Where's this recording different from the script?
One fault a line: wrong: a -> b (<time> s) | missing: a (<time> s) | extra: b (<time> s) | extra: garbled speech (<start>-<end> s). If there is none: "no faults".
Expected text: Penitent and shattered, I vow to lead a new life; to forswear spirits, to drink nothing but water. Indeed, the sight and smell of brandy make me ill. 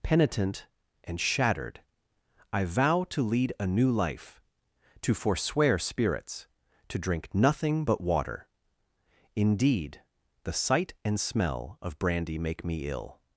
no faults